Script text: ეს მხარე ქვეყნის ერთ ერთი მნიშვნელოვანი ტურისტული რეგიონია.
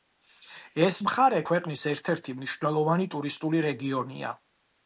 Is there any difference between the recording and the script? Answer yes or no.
no